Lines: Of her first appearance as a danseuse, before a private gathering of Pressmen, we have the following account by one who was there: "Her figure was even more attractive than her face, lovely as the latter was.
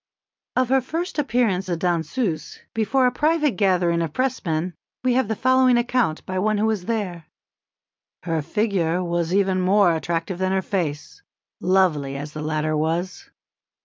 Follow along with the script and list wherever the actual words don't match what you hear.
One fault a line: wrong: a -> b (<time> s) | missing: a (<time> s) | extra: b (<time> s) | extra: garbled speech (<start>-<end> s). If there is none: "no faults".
missing: as (1.7 s)